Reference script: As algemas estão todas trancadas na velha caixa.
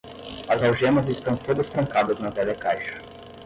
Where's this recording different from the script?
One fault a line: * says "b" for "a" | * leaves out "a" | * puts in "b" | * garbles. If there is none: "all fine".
all fine